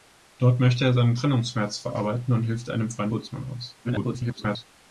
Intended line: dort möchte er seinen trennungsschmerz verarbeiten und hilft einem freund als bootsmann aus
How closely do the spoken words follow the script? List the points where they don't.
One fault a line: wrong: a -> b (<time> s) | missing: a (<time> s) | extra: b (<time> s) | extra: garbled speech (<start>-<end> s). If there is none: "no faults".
missing: als (3.1 s)
extra: garbled speech (3.8-4.6 s)